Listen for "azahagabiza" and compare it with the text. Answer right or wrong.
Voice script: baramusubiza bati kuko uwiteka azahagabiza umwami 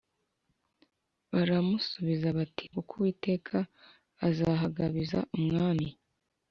right